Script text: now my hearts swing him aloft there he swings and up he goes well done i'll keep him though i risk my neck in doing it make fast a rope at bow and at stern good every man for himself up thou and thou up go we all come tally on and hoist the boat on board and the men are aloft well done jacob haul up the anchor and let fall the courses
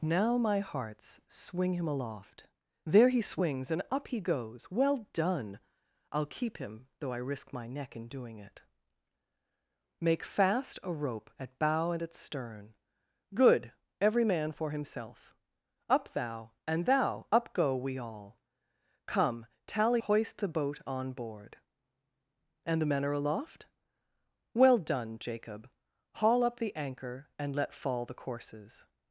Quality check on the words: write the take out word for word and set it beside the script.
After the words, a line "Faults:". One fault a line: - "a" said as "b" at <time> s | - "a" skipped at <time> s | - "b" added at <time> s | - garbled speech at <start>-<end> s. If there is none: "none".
now my hearts swing him aloft there he swings and up he goes well done i'll keep him though i risk my neck in doing it make fast a rope at bow and at stern good every man for himself up thou and thou up go we all come tally hoist the boat on board and the men are aloft well done jacob haul up the anchor and let fall the courses
Faults:
- "on and" skipped at 20.0 s